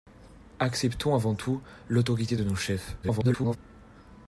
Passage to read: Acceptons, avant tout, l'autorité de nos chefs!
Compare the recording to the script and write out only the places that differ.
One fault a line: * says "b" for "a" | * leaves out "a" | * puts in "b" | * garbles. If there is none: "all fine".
* garbles